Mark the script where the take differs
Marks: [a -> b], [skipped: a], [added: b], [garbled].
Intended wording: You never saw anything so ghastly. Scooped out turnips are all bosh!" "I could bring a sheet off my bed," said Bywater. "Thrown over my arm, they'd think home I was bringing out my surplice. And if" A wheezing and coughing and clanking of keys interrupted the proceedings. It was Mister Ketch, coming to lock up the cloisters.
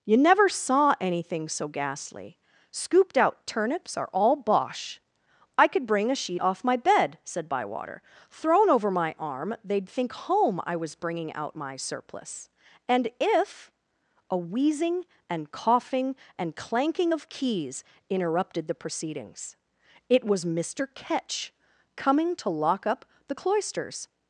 You never saw anything so ghastly. Scooped out turnips are all bosh!" "I could bring a sheet off my bed," said Bywater. "Thrown over my arm, they'd think home I was bringing out my surplice. And if" A wheezing and coughing and clanking of keys interrupted the proceedings. It was Mister Ketch, coming to lock up the cloisters.